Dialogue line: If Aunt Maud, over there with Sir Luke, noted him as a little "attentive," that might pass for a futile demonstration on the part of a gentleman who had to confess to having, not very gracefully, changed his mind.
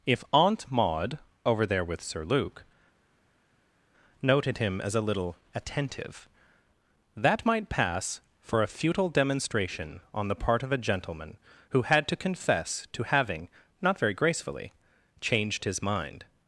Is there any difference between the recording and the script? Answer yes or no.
no